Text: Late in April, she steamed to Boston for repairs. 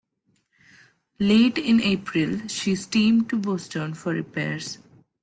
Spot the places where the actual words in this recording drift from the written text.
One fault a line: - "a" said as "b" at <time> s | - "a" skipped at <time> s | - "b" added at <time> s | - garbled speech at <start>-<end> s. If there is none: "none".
none